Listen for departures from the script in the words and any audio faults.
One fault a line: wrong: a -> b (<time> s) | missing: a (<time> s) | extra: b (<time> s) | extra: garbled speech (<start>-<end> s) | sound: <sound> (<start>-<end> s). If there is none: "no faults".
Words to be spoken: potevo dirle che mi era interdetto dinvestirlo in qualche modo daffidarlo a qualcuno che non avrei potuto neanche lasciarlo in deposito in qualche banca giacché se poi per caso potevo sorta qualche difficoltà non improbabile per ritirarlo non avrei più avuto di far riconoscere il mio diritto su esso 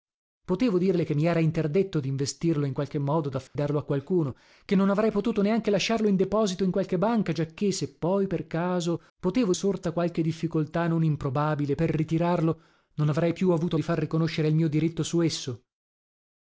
sound: dropout (3.5-3.6 s)